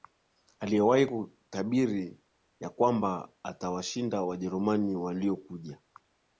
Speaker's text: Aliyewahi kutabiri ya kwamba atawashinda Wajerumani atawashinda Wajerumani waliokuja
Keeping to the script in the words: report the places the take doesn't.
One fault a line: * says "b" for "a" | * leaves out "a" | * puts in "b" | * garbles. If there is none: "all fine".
* leaves out "atawashinda Wajerumani"